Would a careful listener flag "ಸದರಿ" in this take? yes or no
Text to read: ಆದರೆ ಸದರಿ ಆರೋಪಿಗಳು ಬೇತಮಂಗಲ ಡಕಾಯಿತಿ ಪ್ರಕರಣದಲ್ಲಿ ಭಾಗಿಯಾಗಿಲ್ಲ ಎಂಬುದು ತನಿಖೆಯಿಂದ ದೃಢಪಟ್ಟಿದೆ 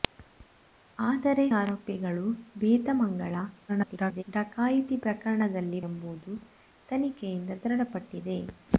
yes